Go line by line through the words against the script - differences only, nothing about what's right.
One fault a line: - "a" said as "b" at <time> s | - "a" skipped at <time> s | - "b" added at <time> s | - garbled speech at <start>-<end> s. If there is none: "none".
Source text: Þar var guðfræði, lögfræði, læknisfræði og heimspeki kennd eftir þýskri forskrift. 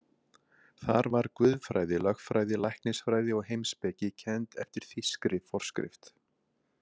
none